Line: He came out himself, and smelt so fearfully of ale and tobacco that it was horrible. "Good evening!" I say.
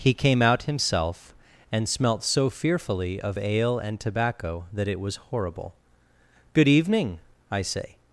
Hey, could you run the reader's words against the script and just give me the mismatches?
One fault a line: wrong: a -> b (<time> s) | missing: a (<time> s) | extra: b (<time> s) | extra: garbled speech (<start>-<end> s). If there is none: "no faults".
no faults